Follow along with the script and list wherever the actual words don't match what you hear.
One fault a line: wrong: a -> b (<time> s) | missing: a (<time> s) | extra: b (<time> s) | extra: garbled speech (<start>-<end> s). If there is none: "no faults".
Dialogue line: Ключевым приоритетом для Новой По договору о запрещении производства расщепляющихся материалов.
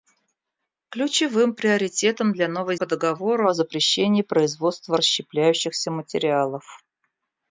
no faults